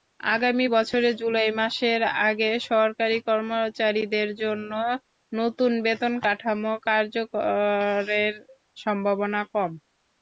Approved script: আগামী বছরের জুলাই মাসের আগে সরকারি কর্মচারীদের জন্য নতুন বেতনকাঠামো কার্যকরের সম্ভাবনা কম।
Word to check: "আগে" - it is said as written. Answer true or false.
true